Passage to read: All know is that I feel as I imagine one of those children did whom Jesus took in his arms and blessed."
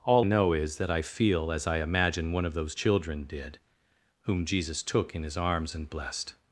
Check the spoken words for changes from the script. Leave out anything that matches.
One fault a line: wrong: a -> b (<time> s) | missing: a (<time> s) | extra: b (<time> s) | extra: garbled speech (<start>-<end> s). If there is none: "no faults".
no faults